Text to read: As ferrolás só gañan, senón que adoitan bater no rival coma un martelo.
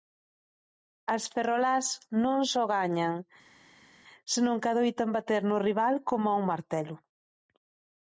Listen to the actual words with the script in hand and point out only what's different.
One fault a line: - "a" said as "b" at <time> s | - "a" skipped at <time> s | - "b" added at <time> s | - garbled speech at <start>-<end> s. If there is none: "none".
- "non" added at 2.2 s